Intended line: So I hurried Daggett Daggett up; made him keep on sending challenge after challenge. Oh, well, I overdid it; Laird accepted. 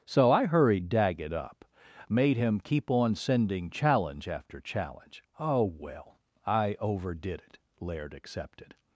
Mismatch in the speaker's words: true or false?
true